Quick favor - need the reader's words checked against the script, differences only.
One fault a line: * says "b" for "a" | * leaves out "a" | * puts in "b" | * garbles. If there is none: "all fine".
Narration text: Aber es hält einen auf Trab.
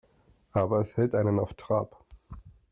all fine